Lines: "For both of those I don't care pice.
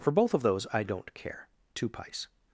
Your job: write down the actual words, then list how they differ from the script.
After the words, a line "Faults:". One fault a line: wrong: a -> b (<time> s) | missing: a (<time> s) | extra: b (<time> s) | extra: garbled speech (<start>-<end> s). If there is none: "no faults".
"For both of those I don't care two pice.
Faults:
extra: two (1.7 s)